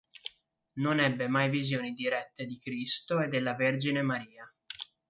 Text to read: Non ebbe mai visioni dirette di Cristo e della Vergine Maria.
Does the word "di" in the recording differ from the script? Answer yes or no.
no